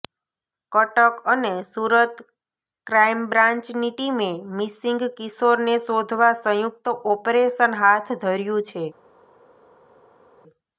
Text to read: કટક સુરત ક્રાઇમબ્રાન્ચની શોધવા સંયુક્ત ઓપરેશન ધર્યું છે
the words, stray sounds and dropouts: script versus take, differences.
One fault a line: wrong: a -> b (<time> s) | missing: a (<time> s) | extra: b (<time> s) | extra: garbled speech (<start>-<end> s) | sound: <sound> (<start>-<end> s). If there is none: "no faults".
extra: અને (1.3 s)
extra: ટીમે મિસિંગ કિશોરને (3.9 s)
extra: હાથ (7.8 s)